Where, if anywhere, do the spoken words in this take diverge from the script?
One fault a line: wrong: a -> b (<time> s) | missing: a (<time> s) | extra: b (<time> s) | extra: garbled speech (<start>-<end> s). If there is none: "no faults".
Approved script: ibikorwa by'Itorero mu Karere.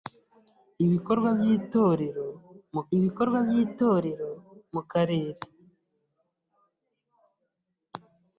extra: ibikorwa by'Itorero mu (3.0 s)